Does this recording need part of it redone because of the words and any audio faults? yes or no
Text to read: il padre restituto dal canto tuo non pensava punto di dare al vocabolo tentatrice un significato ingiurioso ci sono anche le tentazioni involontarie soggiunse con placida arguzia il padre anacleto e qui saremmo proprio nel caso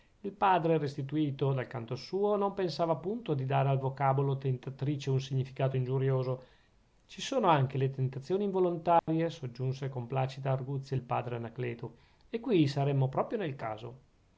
yes